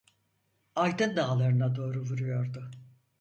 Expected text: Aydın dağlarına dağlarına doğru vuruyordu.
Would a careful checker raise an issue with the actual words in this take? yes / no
yes